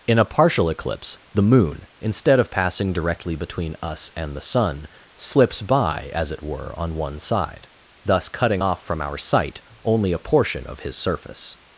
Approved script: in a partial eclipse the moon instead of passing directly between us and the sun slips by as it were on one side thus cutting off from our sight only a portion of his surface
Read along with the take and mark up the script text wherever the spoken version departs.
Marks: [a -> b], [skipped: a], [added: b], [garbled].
in a partial eclipse the moon instead of passing directly between us and the sun slips by as it were on one side thus cutting off from our sight only a portion of his surface